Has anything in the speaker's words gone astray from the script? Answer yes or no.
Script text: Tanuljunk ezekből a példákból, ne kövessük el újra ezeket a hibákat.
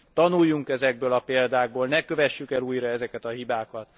no